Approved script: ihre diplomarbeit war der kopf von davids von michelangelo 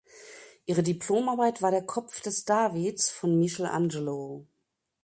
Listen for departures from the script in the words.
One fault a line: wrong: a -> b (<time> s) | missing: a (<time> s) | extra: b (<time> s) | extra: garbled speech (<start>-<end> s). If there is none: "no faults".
wrong: von -> des (2.2 s)